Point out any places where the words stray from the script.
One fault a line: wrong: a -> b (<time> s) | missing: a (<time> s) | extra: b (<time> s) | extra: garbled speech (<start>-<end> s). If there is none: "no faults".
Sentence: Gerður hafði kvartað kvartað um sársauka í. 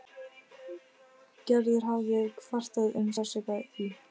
missing: kvartað (3.0 s)